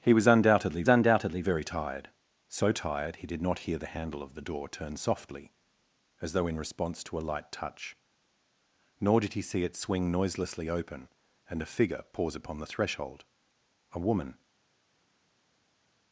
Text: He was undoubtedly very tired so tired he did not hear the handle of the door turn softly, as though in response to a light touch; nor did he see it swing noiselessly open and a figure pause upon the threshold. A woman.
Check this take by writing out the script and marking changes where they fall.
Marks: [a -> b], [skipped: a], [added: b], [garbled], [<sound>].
He was undoubtedly [added: undoubtedly] very tired so tired he did not hear the handle of the door turn softly, as though in response to a light touch; nor did he see it swing noiselessly open and a figure pause upon the threshold. A woman.